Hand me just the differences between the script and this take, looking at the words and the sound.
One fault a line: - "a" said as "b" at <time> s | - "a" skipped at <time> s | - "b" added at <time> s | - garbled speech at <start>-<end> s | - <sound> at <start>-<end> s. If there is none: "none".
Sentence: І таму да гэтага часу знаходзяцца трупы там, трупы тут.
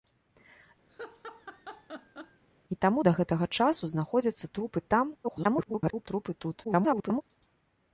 - laugh at 0.9-2.4 s
- garbled speech at 5.2-6.1 s
- garbled speech at 6.6-7.2 s